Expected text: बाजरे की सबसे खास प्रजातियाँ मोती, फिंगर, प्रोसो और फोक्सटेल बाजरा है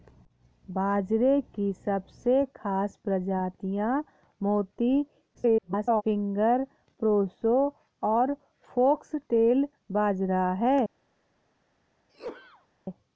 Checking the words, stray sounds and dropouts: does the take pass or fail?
fail